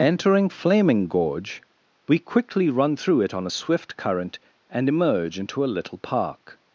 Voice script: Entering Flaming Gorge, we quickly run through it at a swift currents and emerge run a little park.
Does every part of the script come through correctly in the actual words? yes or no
no